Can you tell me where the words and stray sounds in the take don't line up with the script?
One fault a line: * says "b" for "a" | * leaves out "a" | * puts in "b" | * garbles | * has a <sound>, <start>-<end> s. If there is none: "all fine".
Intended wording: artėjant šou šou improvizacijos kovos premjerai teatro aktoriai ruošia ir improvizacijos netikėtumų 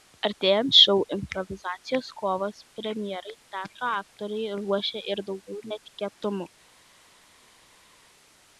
* leaves out "šou"
* says "daugiau" for "improvizacijos"